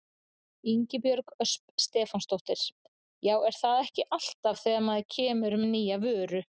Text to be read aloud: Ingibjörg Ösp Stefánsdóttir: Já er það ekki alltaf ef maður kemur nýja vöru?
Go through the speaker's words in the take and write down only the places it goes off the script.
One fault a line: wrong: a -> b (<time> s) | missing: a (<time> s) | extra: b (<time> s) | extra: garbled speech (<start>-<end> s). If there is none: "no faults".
wrong: ef -> þegar (4.6 s)
extra: með (5.6 s)